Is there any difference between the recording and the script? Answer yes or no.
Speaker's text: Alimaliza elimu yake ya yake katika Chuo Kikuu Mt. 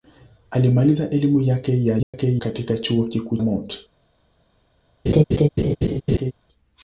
no